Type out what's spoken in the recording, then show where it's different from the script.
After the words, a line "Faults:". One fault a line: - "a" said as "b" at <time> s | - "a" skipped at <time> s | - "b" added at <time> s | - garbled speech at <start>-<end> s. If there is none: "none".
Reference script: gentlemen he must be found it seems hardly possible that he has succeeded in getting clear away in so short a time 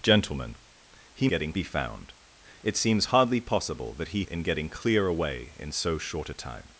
gentlemen he getting be found it seems hardly possible that he in getting clear away in so short a time
Faults:
- "must" said as "getting" at 1.3 s
- "has succeeded" skipped at 4.2 s